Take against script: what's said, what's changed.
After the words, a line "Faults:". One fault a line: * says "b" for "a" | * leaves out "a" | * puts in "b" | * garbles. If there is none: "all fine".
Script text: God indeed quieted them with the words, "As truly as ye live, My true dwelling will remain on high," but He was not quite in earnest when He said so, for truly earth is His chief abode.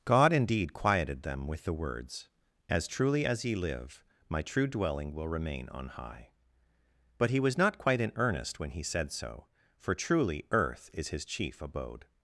God indeed quieted them with the words, "As truly as ye live, My true dwelling will remain on high," but He was not quite in earnest when He said so, for truly earth is His chief abode.
Faults:
all fine